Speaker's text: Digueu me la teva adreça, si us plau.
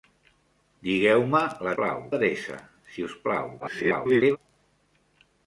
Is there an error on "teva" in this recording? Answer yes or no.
yes